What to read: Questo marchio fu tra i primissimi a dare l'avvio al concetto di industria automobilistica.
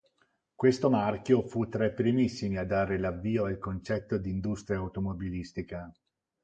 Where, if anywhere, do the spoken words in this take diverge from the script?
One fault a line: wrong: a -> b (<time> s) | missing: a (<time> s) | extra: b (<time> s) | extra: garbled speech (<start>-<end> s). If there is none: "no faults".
no faults